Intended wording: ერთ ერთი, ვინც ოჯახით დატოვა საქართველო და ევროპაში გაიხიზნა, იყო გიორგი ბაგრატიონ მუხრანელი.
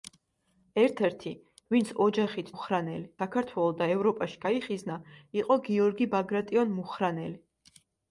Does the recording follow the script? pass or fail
fail